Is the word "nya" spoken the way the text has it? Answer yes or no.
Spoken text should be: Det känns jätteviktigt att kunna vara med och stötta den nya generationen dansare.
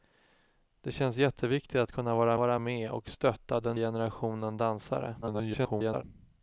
no